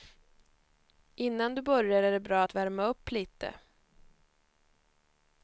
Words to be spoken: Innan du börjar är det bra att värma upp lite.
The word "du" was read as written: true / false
true